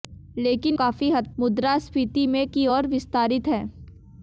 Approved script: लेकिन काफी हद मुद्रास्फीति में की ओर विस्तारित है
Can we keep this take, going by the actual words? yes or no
yes